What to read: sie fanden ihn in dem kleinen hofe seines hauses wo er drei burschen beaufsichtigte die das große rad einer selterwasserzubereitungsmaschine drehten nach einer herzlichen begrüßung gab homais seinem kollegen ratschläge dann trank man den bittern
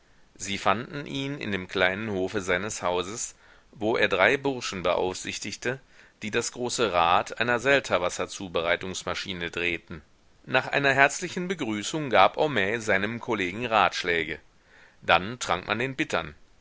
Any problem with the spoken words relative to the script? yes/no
no